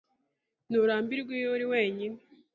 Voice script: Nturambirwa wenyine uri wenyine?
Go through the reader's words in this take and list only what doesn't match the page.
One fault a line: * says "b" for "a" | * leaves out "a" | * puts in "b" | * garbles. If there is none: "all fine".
* says "iyo" for "wenyine"